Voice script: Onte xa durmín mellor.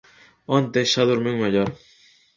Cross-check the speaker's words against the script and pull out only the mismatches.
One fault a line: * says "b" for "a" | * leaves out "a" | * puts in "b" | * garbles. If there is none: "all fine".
all fine